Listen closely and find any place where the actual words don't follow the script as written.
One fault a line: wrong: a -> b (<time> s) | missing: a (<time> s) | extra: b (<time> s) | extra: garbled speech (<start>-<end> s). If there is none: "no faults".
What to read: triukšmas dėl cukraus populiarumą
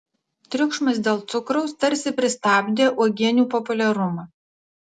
extra: tarsi pristabdė uogienių (1.9 s)